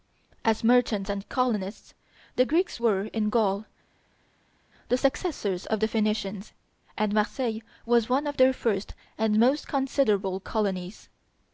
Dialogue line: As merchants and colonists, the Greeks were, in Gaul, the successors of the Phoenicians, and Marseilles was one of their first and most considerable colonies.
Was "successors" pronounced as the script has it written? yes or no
yes